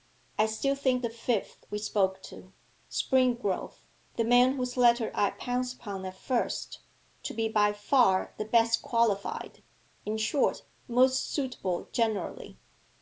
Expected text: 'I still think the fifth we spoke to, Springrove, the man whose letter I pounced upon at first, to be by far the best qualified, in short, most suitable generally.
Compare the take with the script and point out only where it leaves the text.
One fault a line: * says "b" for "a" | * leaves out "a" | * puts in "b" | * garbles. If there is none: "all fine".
all fine